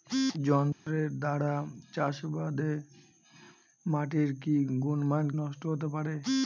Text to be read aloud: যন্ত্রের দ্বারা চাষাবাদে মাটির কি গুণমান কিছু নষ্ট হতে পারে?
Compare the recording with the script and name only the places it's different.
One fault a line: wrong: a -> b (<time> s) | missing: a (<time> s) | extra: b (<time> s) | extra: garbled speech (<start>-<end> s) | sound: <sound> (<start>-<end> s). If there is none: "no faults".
sound: dropout (0.7-0.9 s)
missing: কিছু (5.3 s)